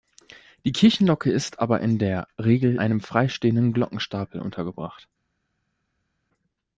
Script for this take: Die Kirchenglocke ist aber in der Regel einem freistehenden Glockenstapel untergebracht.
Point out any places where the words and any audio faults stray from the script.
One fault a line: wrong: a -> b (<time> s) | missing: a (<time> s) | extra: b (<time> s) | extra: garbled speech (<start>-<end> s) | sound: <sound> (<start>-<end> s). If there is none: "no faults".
no faults